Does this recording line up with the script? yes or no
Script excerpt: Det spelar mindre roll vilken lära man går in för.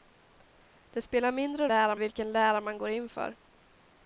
no